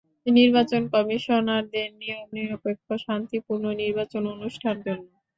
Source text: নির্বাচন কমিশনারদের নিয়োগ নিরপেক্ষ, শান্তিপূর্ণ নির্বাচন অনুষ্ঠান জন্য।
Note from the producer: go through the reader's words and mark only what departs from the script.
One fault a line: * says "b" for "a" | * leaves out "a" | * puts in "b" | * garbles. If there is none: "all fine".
all fine